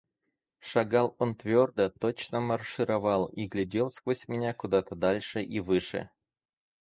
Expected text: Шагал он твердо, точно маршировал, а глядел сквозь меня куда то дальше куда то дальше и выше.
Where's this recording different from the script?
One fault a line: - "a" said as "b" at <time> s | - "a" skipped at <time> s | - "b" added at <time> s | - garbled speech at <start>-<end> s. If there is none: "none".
- "а" said as "и" at 3.3 s
- "куда то дальше" skipped at 5.4 s